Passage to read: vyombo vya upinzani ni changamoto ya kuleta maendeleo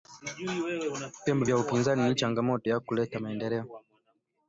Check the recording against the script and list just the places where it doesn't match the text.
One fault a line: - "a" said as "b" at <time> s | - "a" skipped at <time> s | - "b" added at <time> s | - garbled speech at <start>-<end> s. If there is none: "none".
none